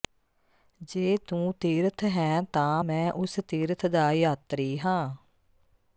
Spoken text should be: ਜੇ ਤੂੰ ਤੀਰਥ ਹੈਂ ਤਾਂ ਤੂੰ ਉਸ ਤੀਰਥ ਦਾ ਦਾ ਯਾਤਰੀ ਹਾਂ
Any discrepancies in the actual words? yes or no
yes